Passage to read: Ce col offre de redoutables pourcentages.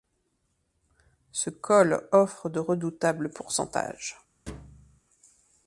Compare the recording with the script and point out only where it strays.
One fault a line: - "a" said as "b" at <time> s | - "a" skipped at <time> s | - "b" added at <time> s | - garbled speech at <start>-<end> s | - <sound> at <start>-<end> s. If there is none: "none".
- thud at 4.5-5.0 s